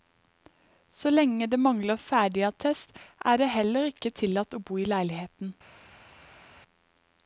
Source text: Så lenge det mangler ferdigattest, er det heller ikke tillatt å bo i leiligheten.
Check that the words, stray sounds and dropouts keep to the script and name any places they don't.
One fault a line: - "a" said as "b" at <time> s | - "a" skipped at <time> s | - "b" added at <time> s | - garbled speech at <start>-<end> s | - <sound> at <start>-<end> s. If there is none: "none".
none